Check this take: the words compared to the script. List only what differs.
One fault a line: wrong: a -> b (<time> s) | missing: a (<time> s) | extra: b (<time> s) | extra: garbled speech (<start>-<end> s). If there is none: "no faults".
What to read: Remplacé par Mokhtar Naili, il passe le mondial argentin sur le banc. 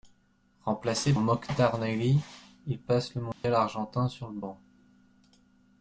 missing: par (1.1 s)